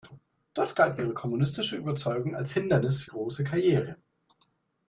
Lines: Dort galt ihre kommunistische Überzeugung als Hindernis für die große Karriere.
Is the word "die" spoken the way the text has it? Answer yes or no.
no